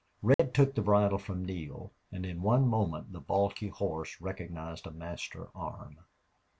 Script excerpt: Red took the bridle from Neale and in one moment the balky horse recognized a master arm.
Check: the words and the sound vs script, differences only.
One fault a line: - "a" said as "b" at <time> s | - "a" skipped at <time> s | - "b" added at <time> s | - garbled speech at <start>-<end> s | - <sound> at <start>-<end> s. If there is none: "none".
- dropout at 0.3-0.4 s